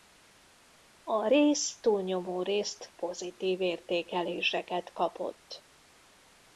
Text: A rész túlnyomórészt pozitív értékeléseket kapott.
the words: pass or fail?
pass